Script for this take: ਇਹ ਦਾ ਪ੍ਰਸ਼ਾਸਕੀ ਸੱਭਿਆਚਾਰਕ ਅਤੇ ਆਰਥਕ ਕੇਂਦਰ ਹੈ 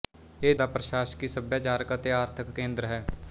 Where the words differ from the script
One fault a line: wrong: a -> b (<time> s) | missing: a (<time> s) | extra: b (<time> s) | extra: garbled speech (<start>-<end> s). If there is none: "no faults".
no faults